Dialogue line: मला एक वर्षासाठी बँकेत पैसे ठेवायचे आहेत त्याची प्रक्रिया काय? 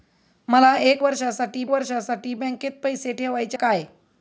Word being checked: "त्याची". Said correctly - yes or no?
no